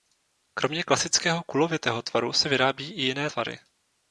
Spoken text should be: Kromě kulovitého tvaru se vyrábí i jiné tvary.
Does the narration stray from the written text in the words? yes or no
yes